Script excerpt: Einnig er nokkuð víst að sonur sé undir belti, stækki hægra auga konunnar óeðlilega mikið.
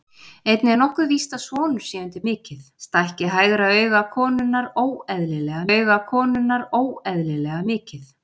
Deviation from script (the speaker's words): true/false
true